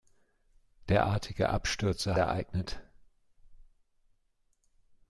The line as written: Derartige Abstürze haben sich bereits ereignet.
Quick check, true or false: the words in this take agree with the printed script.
false